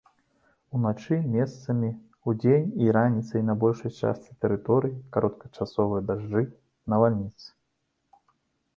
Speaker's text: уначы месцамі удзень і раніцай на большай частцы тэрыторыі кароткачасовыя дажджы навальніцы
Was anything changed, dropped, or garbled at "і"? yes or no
no